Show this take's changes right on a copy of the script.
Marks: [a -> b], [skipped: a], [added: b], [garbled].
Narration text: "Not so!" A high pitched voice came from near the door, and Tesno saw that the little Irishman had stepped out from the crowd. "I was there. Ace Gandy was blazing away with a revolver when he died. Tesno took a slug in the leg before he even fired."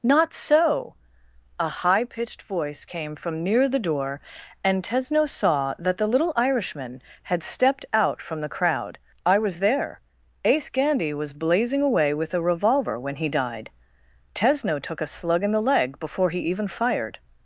"Not so!" A high pitched voice came from near the door, and Tesno saw that the little Irishman had stepped out from the crowd. "I was there. Ace Gandy was blazing away with a revolver when he died. Tesno took a slug in the leg before he even fired."